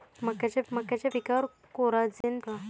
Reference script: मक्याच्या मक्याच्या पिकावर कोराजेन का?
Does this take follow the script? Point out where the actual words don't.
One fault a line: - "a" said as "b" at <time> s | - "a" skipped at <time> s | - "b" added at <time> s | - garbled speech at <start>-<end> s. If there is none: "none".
none